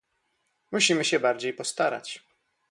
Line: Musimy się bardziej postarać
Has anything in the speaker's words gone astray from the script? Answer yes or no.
no